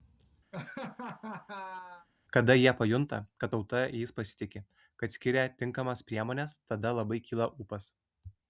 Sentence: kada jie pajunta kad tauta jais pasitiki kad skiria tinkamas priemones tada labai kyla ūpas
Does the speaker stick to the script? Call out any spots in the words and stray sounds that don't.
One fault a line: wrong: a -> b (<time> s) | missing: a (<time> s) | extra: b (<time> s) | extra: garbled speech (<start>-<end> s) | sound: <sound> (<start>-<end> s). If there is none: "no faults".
sound: laugh (0.5-2.1 s)